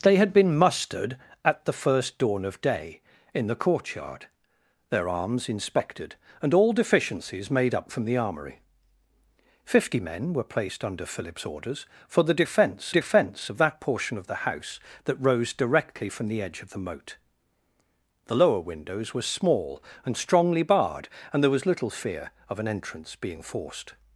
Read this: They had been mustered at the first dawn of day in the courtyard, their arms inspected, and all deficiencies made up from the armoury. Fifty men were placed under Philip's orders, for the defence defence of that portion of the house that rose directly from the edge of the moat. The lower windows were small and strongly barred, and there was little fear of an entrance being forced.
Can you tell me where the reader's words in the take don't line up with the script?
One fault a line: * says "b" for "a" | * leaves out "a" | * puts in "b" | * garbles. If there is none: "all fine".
all fine